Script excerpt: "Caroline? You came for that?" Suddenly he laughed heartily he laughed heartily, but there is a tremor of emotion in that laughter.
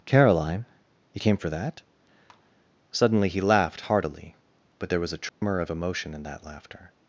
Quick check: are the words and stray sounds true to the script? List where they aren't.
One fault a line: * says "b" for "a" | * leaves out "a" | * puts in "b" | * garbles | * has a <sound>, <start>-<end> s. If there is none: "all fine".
* leaves out "he laughed heartily"
* says "was" for "is"
* has a dropout, 5.3-5.4 s